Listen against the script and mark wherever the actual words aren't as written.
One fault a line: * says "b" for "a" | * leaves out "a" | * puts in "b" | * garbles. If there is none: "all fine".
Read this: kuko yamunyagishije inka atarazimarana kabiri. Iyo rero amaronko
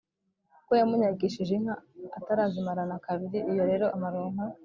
all fine